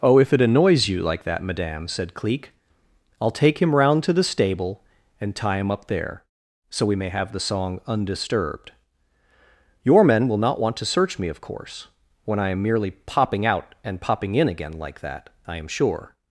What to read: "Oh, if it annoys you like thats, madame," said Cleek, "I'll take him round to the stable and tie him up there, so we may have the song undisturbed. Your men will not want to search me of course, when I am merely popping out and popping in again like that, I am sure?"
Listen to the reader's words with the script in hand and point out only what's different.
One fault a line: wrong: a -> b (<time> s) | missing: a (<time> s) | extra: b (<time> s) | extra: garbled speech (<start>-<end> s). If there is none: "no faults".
wrong: thats -> that (1.2 s)